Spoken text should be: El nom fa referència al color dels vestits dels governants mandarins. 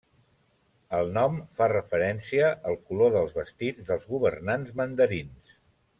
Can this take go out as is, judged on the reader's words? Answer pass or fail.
pass